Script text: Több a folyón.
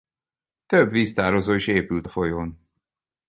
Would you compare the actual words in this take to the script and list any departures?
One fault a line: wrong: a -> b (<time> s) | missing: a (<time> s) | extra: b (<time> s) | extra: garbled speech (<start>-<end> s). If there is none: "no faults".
extra: víztározó is épült (0.9 s)